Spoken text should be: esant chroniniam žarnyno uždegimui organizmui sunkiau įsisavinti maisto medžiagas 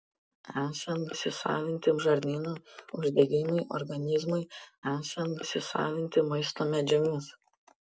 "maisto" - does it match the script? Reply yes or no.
yes